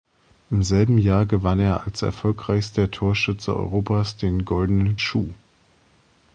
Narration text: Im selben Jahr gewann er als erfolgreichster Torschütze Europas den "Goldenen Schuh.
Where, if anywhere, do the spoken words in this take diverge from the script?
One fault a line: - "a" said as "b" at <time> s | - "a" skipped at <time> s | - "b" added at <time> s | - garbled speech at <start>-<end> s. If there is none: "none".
none